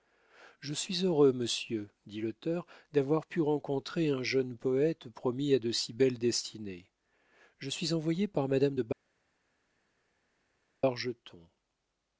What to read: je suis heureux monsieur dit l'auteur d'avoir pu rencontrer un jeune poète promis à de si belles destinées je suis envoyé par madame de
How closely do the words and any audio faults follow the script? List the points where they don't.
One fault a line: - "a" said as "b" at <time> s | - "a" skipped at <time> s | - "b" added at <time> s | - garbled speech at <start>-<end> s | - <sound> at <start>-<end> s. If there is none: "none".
none